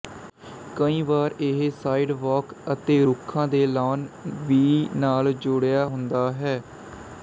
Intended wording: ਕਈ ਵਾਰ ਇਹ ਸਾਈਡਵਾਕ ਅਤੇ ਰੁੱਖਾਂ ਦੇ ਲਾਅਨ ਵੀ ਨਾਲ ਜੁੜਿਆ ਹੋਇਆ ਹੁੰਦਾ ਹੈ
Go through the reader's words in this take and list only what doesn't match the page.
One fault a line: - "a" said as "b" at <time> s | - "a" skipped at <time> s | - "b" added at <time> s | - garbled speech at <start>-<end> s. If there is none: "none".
- "ਹੋਇਆ" skipped at 5.8 s